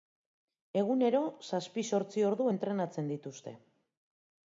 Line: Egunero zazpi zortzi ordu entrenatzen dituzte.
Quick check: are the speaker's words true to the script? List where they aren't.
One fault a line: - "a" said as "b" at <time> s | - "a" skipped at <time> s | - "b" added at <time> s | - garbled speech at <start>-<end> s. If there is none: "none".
none